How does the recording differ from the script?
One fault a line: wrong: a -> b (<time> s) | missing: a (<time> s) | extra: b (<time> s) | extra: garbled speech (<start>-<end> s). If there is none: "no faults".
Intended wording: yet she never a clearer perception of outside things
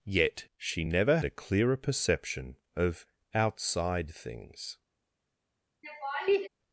no faults